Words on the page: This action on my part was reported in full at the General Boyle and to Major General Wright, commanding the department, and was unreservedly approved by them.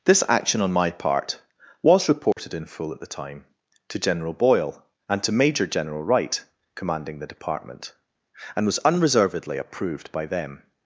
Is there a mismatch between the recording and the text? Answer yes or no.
yes